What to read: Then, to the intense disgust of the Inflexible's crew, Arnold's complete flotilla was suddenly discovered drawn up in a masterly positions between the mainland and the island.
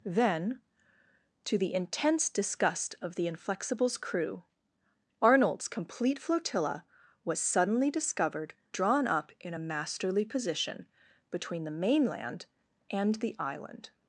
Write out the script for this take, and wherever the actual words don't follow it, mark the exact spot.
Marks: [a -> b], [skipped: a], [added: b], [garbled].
Then, to the intense disgust of the Inflexible's crew, Arnold's complete flotilla was suddenly discovered drawn up in a masterly [positions -> position] between the mainland and the island.